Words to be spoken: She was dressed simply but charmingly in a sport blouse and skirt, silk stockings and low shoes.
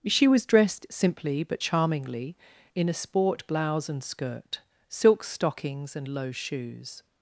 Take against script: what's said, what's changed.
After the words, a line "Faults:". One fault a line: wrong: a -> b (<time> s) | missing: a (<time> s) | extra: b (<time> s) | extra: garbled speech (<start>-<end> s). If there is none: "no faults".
She was dressed simply but charmingly in a sport blouse and skirt, silk stockings and low shoes.
Faults:
no faults